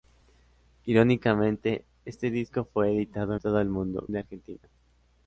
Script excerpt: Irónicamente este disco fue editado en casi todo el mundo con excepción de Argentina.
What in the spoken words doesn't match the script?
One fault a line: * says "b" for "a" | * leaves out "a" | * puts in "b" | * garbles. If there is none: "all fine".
* leaves out "en casi"
* leaves out "con excepción"